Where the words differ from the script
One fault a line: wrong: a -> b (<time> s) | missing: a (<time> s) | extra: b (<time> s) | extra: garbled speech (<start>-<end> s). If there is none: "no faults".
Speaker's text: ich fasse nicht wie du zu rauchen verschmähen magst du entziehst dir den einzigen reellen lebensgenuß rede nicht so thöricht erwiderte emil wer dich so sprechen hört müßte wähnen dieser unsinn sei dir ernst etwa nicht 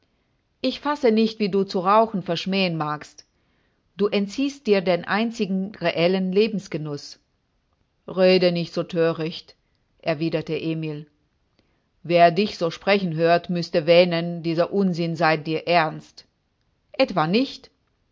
no faults